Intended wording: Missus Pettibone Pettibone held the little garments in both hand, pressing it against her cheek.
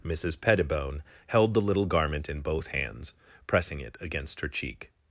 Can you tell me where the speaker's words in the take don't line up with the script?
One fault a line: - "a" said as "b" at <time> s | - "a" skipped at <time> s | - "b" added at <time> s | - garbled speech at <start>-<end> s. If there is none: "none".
- "Pettibone" skipped at 1.0 s
- "garments" said as "garment" at 1.9 s
- "hand" said as "hands" at 2.7 s